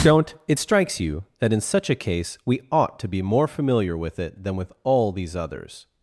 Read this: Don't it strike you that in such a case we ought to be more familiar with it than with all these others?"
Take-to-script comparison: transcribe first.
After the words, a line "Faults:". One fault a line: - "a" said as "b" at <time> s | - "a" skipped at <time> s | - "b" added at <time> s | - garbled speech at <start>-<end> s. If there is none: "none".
Don't it strikes you that in such a case we ought to be more familiar with it than with all these others?"
Faults:
- "strike" said as "strikes" at 0.6 s